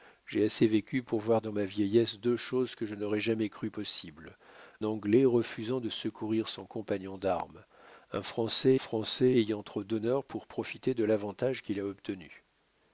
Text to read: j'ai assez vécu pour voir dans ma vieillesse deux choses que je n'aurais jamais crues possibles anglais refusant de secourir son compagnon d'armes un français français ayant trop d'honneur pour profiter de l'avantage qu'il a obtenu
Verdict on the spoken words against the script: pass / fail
pass